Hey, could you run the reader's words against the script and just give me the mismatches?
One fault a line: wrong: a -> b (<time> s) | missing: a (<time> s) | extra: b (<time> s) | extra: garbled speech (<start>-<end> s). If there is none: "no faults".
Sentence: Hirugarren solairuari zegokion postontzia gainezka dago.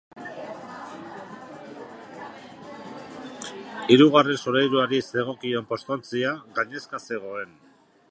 wrong: dago -> zegoen (7.1 s)